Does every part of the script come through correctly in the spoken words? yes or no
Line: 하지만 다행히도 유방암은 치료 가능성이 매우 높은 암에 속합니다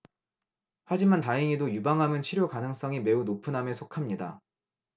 yes